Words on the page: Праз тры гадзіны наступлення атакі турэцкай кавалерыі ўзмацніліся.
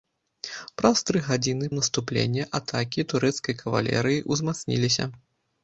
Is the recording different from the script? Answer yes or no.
no